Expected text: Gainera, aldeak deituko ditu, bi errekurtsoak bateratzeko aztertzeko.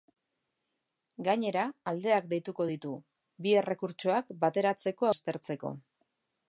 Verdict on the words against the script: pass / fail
pass